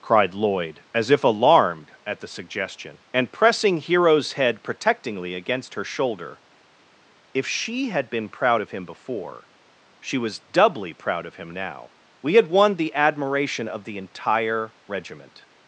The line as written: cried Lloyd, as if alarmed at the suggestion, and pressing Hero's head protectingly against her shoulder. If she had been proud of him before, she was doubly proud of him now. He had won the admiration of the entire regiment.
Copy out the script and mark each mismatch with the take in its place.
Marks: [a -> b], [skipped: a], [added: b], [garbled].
cried Lloyd, as if alarmed at the suggestion, and pressing Hero's head protectingly against her shoulder. If she had been proud of him before, she was doubly proud of him now. [He -> We] had won the admiration of the entire regiment.